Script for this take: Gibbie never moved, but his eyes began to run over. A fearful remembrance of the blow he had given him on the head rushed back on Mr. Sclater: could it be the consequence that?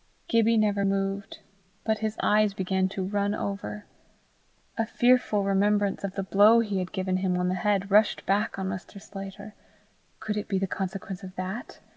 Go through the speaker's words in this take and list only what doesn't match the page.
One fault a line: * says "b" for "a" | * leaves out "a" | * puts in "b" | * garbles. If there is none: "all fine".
* puts in "of"